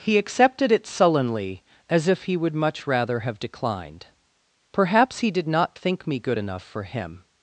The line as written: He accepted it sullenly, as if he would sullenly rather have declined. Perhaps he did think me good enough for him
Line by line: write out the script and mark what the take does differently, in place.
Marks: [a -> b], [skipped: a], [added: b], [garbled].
He accepted it sullenly, as if he would [sullenly -> much] rather have declined. Perhaps he did [added: not] think me good enough for him